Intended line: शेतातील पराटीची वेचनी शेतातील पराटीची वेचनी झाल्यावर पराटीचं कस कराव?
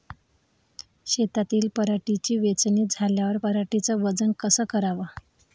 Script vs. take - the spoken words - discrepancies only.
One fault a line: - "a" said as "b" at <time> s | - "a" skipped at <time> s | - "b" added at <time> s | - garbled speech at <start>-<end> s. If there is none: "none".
- "शेतातील पराटीची वेचनी" skipped at 2.9 s
- "वजन" added at 4.0 s